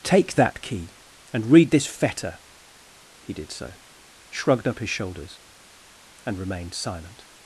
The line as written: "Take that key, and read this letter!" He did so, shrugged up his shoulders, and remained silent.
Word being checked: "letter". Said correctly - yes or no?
no